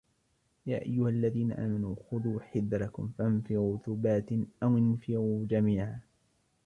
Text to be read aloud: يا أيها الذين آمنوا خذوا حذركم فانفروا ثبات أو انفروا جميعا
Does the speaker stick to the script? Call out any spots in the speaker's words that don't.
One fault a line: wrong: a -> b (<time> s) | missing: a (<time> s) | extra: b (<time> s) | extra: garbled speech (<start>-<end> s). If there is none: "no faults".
no faults